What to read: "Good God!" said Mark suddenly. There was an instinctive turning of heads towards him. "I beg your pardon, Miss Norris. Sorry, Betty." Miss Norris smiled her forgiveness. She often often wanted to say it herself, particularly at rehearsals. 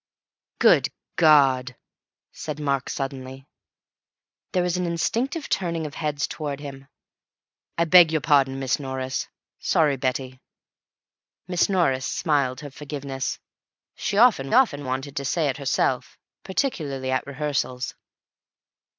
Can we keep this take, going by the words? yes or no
yes